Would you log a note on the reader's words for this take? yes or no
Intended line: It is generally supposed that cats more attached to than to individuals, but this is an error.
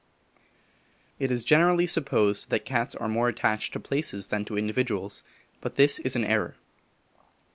yes